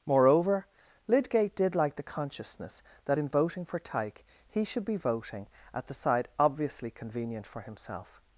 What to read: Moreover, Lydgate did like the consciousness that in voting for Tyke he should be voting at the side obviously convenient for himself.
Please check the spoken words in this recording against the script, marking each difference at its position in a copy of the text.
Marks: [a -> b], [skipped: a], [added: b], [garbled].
Moreover, Lydgate did like the consciousness that in voting for Tyke he should be voting at the side obviously convenient for himself.